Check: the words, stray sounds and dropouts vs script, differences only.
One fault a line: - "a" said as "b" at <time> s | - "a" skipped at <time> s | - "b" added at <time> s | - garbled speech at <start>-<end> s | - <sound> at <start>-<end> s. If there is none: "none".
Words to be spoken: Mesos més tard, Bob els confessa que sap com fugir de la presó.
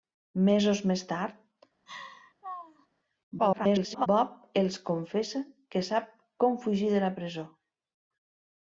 - laugh at 1.9-2.9 s
- garbled speech at 3.4-4.1 s